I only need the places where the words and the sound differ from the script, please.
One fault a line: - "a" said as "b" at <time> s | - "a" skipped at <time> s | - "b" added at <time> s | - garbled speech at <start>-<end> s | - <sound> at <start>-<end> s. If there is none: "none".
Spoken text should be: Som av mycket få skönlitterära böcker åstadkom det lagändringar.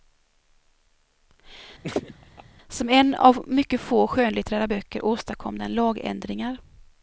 - laugh at 1.8-2.4 s
- "en" added at 2.9 s
- "det" said as "den" at 5.6 s